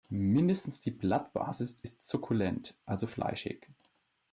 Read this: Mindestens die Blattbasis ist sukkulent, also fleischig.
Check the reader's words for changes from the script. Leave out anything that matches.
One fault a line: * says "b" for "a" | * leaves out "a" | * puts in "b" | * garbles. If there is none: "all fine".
all fine